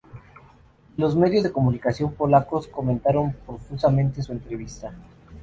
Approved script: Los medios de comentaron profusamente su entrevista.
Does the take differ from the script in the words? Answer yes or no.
yes